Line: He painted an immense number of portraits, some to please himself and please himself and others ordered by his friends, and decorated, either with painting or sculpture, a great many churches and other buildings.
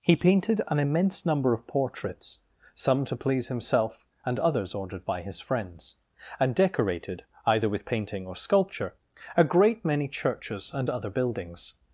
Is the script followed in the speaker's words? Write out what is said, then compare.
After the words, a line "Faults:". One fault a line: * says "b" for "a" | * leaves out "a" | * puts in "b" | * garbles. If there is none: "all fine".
He painted an immense number of portraits, some to please himself and others ordered by his friends, and decorated, either with painting or sculpture, a great many churches and other buildings.
Faults:
* leaves out "please himself and"